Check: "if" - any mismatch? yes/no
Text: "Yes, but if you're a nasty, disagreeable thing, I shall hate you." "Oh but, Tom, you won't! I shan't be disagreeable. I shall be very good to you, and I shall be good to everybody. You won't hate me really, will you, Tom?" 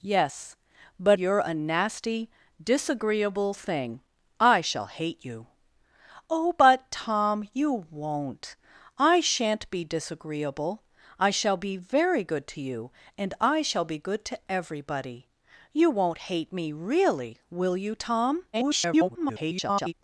yes